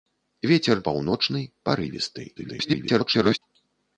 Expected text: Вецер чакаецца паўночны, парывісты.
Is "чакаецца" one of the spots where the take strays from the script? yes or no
yes